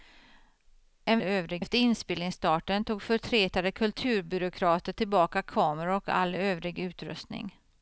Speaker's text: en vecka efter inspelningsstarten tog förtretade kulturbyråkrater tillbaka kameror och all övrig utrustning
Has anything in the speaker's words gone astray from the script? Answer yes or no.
yes